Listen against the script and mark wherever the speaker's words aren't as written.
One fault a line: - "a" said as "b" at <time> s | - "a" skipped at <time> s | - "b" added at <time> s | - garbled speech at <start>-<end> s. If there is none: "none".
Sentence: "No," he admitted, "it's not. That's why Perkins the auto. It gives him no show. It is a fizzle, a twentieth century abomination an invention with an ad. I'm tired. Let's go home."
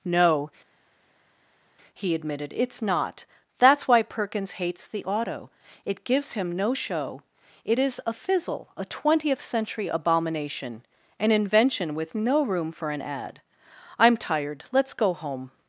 - "hates" added at 4.5 s
- "no room for" added at 12.1 s